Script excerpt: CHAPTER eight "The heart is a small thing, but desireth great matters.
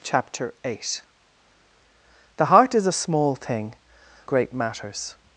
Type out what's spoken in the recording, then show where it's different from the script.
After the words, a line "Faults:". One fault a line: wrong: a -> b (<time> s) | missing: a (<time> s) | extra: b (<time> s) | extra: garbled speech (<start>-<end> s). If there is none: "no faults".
CHAPTER eight "The heart is a small thing, great matters.
Faults:
missing: but desireth (3.8 s)